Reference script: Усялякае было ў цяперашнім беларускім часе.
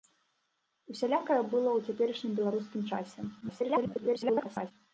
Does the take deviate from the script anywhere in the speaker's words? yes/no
yes